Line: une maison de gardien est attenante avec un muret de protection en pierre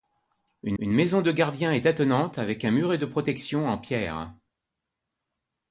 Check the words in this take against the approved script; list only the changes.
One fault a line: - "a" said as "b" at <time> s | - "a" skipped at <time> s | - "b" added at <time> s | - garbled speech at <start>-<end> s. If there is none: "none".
- "une" added at 0.8 s